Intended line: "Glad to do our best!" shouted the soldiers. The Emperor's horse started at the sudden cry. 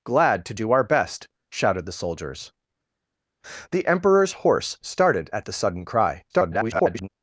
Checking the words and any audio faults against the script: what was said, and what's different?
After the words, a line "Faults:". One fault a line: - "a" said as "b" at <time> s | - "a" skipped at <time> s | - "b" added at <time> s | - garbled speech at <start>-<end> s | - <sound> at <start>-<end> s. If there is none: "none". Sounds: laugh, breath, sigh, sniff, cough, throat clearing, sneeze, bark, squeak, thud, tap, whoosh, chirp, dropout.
"Glad to do our best!" shouted the soldiers. The Emperor's horse started at the sudden cry. [garbled]
Faults:
- garbled speech at 6.3-7.1 s